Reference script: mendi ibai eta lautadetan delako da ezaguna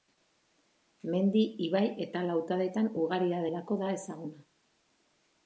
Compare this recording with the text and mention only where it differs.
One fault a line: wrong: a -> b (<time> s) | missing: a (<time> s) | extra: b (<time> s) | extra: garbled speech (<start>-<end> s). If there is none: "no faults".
extra: ugaria (3.0 s)